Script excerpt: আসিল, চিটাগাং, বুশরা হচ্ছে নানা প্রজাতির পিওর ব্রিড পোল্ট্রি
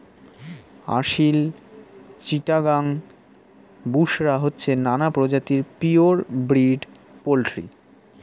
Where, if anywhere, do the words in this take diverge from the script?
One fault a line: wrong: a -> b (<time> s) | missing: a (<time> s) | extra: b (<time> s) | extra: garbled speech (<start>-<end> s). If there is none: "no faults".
no faults